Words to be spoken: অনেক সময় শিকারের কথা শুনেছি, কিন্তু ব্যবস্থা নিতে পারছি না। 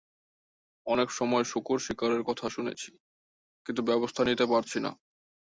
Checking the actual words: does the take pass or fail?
fail